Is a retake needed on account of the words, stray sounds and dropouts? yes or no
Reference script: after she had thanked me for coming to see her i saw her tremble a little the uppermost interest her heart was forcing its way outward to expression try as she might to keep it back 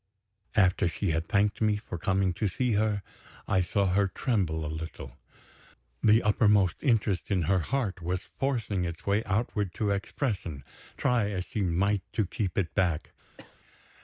yes